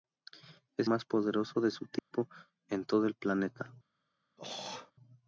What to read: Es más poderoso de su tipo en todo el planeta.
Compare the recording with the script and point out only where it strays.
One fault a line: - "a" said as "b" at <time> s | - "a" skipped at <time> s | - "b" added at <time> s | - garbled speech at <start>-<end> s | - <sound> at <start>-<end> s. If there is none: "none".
- dropout at 2.0-2.1 s
- throat clearing at 4.4-4.9 s